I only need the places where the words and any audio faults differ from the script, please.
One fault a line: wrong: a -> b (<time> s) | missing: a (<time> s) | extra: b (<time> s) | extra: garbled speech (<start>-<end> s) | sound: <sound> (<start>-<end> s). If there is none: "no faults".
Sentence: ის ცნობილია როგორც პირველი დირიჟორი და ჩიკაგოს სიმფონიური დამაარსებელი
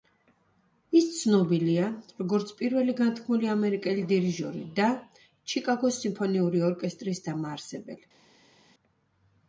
extra: განთქმული ამერიკელი (3.0 s)
extra: ორკესტრის (6.7 s)